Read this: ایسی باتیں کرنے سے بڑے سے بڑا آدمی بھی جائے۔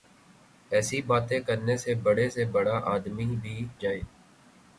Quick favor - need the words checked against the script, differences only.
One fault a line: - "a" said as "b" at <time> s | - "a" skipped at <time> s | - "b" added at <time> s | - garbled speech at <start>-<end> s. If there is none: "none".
none